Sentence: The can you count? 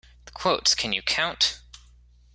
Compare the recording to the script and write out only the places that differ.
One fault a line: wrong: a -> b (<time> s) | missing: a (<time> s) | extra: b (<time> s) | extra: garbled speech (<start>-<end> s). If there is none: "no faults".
extra: quotes (0.3 s)